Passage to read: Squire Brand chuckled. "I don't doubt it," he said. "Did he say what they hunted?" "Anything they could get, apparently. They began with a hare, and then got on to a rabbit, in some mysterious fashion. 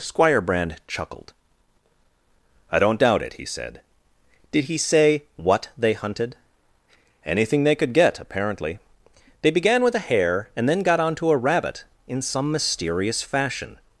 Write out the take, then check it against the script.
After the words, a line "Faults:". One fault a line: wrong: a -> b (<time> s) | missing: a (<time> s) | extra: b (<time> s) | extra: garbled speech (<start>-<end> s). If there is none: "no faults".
Squire Brand chuckled. "I don't doubt it," he said. "Did he say what they hunted?" "Anything they could get, apparently. They began with a hare, and then got on to a rabbit, in some mysterious fashion.
Faults:
no faults